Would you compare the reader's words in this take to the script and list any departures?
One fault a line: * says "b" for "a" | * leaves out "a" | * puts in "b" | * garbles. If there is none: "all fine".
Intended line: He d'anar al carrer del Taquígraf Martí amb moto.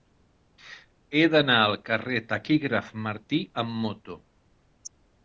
all fine